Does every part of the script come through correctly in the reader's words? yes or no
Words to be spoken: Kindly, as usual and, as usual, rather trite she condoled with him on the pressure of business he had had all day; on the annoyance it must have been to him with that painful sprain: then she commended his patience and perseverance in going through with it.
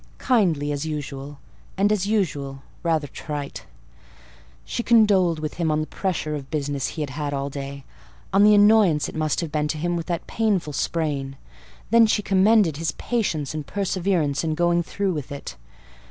yes